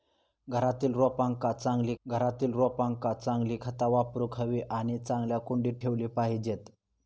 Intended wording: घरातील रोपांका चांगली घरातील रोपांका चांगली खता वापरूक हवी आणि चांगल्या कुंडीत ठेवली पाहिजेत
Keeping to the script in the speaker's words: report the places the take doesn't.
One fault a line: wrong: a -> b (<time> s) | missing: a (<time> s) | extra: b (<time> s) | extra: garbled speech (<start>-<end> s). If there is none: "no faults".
no faults